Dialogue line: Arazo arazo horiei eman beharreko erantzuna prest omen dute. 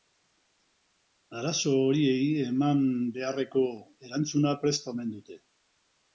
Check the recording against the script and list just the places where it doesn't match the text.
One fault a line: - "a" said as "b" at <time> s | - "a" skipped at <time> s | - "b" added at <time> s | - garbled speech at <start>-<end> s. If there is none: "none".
- "arazo" skipped at 1.7 s